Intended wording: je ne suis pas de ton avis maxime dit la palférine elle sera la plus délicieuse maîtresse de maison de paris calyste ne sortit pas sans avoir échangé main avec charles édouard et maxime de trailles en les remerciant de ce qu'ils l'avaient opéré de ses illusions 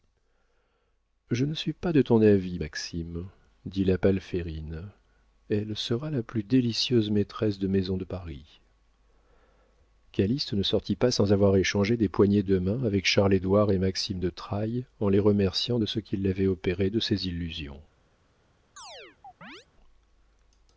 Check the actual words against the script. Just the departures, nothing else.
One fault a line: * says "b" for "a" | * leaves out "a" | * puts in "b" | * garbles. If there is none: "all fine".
* puts in "des poignées de"